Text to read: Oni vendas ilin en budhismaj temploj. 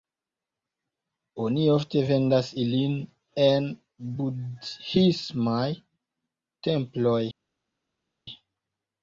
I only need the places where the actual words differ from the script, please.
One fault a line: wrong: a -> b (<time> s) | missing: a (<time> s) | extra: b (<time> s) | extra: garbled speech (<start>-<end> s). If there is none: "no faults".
extra: ofte (1.7 s)